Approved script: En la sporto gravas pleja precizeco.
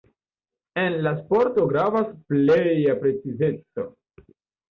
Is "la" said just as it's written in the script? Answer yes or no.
yes